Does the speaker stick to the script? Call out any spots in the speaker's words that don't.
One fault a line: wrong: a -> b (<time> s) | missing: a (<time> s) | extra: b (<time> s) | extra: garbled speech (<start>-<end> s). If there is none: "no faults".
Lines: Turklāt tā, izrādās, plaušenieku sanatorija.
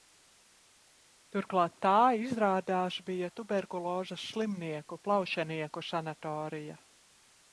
extra: bija tuberkulozes slimnieku (3.1 s)